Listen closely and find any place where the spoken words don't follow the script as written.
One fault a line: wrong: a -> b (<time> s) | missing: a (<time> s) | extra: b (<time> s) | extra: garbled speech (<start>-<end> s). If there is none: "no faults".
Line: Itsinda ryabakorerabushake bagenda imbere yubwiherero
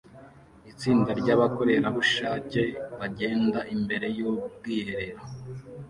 no faults